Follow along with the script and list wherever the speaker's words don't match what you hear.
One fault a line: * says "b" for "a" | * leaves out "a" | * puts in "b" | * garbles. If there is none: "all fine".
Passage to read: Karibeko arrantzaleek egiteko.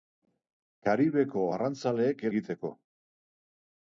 all fine